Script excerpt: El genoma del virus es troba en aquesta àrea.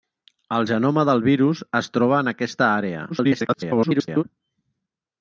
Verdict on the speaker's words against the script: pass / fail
fail